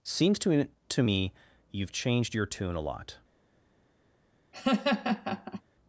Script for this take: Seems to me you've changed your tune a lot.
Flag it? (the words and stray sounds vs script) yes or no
yes